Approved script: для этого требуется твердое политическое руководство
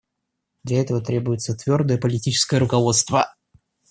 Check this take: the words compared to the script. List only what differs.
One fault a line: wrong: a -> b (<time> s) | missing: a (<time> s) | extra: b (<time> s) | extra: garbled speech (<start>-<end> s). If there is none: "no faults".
no faults